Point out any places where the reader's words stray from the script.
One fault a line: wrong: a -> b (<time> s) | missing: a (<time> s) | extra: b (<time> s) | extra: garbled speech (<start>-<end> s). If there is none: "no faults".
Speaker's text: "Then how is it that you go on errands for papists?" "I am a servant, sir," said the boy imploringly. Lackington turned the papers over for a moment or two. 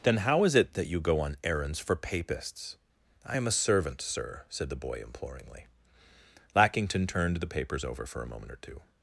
no faults